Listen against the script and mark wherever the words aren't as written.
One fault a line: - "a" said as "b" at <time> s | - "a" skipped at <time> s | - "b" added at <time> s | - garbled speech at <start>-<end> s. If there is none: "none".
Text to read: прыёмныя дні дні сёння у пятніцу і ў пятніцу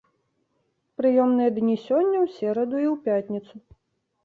- "дні" skipped at 1.8 s
- "пятніцу" said as "сераду" at 2.4 s